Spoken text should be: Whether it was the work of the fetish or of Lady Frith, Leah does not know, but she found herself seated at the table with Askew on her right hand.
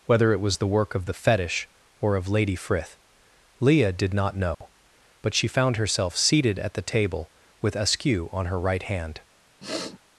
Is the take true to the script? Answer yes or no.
no